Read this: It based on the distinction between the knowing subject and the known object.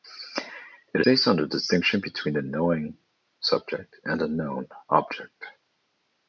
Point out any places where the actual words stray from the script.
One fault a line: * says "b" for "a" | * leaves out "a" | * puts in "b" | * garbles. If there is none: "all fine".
all fine